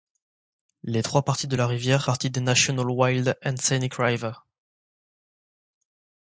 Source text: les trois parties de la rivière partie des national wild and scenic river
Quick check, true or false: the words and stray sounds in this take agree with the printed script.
true